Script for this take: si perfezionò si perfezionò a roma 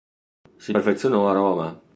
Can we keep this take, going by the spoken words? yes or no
no